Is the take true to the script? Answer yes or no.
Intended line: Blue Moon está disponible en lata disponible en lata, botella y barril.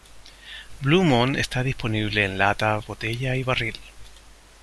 no